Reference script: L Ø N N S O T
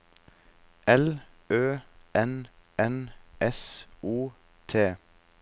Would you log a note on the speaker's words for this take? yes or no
no